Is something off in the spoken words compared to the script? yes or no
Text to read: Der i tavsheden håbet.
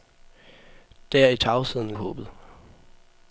no